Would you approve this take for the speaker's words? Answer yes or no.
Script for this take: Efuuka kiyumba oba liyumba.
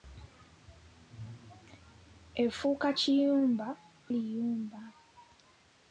no